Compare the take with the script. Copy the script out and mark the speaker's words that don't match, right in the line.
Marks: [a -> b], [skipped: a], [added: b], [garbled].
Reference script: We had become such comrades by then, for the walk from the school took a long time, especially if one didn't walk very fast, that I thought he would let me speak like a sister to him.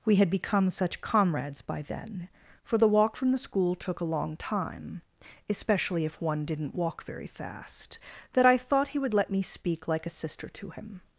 We had become such comrades by then, for the walk from the school took a long time, especially if one didn't walk very fast, that I thought he would let me speak like a sister to him.